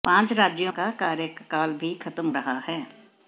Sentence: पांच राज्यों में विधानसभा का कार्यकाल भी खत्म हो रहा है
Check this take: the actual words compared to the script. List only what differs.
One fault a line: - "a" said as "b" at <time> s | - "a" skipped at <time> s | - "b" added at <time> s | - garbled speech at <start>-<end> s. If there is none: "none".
- "में विधानसभा" skipped at 0.7 s
- "हो" skipped at 2.3 s